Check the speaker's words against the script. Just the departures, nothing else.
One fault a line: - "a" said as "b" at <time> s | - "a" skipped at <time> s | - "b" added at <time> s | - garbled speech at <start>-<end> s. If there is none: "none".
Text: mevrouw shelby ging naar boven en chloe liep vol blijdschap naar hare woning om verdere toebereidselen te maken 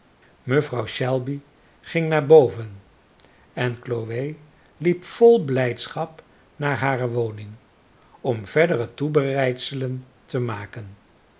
none